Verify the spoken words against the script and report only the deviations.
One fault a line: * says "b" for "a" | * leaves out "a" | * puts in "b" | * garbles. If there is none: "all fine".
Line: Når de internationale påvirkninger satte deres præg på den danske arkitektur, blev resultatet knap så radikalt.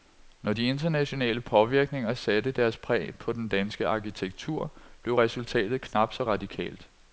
all fine